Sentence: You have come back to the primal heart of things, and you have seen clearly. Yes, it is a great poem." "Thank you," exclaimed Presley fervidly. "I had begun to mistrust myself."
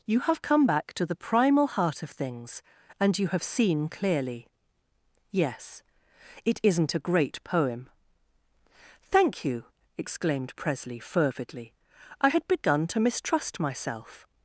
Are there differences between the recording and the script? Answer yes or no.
yes